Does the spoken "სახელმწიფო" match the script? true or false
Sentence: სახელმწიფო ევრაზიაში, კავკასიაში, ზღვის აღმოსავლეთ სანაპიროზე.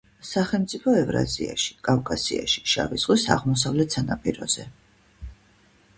true